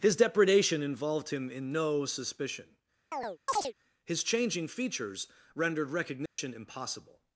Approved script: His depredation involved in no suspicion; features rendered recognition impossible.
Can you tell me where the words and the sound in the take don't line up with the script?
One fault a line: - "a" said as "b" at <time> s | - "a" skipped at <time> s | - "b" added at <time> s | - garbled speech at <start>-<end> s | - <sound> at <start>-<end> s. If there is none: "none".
- "him" added at 1.3 s
- chirp at 3.1-3.7 s
- "his changing" added at 4.0 s
- dropout at 6.3-6.4 s